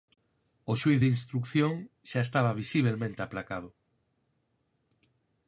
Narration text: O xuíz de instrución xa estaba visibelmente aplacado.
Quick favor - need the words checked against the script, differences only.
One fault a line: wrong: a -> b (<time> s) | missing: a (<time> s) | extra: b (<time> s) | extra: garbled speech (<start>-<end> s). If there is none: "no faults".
no faults